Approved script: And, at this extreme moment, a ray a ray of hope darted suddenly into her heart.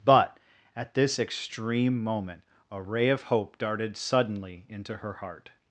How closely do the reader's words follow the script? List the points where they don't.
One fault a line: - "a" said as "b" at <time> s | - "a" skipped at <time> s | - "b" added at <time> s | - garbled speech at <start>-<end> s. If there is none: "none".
- "And" said as "But" at 0.0 s
- "a ray" skipped at 3.1 s